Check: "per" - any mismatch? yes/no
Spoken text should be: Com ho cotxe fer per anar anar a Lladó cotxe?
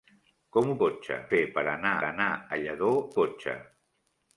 no